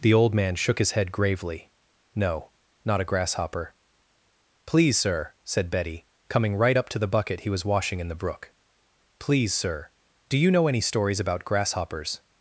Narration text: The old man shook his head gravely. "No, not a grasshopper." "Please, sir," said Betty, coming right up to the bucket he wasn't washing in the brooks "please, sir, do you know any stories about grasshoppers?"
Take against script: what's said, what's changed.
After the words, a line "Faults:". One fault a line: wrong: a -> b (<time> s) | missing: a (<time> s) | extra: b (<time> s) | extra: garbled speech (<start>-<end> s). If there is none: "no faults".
The old man shook his head gravely. "No, not a grasshopper." "Please, sir," said Betty, coming right up to the bucket he was washing in the brook "please, sir, do you know any stories about grasshoppers?"
Faults:
wrong: wasn't -> was (7.5 s)
wrong: brooks -> brook (8.1 s)